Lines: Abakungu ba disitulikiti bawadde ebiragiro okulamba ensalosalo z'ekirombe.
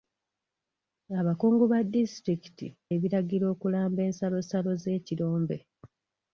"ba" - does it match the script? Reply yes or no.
yes